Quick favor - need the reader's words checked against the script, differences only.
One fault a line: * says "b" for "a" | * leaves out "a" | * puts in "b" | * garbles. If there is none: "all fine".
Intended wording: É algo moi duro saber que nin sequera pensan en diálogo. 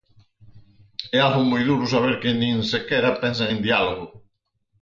all fine